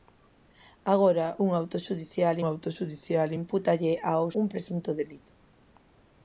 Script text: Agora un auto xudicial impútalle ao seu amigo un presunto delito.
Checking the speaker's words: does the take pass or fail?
fail